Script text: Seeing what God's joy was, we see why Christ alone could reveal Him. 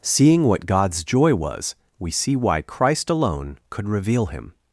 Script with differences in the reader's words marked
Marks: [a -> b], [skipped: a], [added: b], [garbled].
Seeing what God's joy was, we see why Christ alone could reveal Him.